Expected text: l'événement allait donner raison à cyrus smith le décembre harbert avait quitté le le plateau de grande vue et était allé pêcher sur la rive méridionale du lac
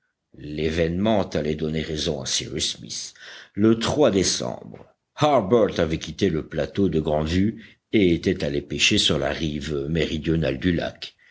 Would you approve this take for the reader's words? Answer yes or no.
no